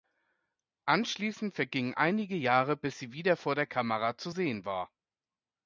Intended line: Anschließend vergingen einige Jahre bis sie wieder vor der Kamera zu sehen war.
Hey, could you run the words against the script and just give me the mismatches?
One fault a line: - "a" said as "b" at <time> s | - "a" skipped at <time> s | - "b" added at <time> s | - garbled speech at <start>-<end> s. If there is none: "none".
none